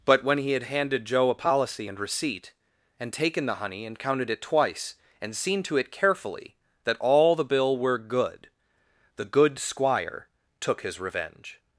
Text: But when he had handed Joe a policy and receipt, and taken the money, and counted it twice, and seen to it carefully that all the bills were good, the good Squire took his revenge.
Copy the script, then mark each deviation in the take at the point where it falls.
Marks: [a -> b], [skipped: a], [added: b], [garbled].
But when he had handed Joe a policy and receipt, and taken the [money, -> honey] and counted it twice, and seen to it carefully that all the [bills -> bill] were good, the good Squire took his revenge.